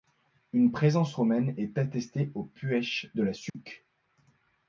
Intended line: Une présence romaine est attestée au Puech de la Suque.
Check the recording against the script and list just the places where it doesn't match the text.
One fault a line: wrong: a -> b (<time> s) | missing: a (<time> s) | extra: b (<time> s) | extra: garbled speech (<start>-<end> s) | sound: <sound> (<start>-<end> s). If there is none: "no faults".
sound: dropout (3.5-3.5 s)